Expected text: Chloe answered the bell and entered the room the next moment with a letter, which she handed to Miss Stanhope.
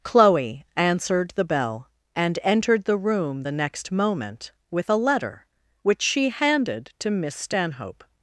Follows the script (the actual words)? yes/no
yes